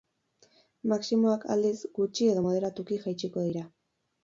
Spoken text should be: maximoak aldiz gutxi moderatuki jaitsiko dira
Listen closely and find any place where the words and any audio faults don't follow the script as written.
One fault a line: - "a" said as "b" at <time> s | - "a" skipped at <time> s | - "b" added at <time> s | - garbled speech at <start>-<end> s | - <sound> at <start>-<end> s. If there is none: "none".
- "edo" added at 2.3 s